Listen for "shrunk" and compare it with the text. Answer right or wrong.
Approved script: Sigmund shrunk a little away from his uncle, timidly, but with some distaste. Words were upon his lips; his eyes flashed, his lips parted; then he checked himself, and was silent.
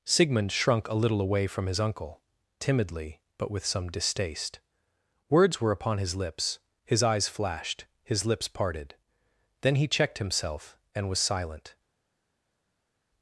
right